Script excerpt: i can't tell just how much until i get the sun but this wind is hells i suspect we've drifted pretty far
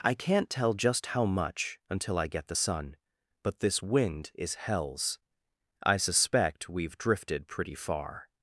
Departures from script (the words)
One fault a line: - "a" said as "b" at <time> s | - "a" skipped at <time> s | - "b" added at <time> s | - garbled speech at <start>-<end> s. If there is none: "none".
none